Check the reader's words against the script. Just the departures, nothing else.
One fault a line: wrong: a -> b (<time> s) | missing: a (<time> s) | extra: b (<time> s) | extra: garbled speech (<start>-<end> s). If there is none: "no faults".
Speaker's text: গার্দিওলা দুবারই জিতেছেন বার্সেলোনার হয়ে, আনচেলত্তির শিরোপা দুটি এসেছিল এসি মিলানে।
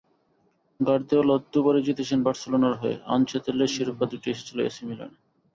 no faults